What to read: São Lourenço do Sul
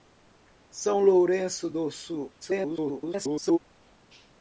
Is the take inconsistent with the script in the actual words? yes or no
yes